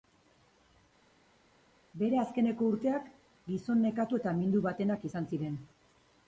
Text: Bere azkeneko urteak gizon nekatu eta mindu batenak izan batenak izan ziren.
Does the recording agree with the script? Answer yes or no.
no